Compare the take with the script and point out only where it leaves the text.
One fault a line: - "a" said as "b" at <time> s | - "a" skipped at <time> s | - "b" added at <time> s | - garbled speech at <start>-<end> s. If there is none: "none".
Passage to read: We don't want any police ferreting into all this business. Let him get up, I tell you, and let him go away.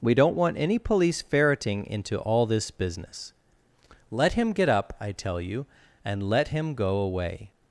none